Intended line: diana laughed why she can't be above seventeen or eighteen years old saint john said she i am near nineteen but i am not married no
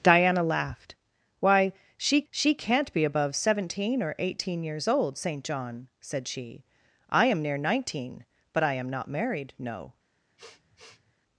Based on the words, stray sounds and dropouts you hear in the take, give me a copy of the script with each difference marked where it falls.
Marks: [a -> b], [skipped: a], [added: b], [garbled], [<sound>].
diana laughed why she [added: she] can't be above seventeen or eighteen years old saint john said she i am near nineteen but i am not married no [sniff]